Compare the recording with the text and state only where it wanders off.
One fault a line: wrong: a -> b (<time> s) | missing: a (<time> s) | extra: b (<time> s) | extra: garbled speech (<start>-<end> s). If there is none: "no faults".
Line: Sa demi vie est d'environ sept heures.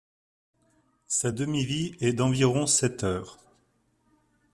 no faults